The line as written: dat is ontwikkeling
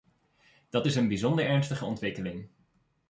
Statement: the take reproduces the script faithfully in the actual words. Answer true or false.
false